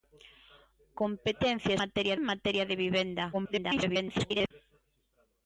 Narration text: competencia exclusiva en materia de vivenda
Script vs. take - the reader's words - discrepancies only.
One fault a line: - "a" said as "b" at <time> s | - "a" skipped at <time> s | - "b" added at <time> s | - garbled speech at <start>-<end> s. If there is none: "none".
- "exclusiva" said as "materia" at 1.8 s
- garbled speech at 3.3-4.5 s